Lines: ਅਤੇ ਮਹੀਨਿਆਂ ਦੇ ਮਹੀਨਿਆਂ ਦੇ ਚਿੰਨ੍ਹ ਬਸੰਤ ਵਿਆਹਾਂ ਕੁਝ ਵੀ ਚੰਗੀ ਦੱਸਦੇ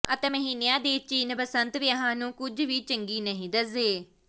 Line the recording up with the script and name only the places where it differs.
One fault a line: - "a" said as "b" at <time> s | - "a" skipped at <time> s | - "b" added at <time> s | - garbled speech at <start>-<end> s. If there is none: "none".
- "ਮਹੀਨਿਆਂ ਦੇ" skipped at 1.0 s
- "ਨੂੰ" added at 2.1 s
- "ਨਹੀਂ" added at 3.2 s